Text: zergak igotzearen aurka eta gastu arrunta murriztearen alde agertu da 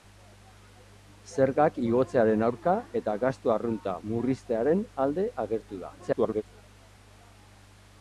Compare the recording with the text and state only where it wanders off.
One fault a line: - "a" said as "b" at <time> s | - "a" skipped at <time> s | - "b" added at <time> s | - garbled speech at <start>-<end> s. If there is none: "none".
- garbled speech at 6.0-6.4 s